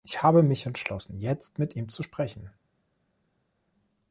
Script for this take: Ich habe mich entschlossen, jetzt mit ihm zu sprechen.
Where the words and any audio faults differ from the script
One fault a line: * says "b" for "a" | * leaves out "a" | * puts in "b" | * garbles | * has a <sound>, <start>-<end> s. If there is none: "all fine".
all fine